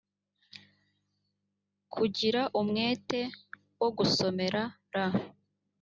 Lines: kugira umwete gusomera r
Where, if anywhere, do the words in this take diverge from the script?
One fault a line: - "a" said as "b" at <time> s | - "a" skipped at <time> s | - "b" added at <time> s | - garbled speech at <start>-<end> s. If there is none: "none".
- "wo" added at 3.8 s